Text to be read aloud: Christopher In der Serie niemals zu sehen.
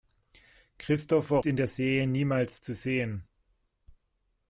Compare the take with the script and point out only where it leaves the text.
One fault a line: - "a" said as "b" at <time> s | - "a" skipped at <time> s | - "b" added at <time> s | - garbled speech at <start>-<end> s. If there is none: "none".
none